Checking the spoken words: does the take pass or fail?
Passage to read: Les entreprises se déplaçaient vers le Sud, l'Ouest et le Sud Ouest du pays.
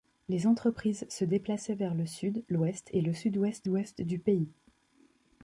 fail